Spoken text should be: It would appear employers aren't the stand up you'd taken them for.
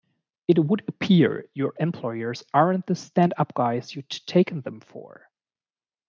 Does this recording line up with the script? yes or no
no